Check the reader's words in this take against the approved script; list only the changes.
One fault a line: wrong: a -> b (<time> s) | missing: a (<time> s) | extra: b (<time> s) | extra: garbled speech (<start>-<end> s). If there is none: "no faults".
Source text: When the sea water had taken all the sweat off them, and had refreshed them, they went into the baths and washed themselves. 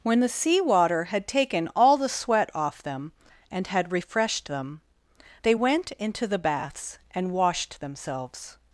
no faults